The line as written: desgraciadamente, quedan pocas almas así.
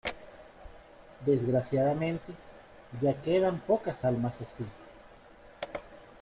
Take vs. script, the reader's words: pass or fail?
fail